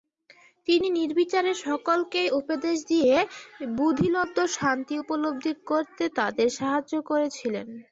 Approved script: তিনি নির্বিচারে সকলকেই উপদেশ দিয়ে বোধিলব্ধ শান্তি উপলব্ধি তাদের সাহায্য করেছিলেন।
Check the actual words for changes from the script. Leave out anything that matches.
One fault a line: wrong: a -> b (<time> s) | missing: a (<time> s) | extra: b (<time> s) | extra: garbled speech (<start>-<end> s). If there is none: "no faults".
extra: করতে (5.7 s)